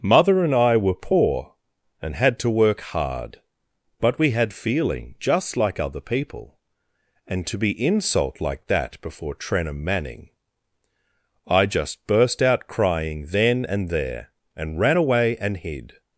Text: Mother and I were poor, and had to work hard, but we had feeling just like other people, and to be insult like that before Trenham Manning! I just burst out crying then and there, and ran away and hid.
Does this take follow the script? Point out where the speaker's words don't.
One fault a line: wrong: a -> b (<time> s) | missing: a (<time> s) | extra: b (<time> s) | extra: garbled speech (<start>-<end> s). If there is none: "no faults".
no faults